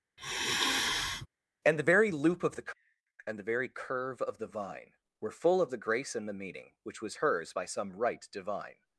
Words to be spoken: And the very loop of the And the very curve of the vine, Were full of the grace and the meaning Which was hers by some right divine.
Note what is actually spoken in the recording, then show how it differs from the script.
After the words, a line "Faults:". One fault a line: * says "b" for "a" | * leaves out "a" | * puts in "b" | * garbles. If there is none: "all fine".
And the very loop of the And the very curve of the vine, Were full of the grace and the meaning Which was hers by some right divine.
Faults:
all fine